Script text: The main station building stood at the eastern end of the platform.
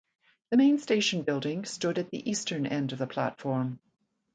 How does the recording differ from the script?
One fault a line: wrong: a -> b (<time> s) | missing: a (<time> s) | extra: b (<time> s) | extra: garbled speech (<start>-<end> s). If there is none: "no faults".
no faults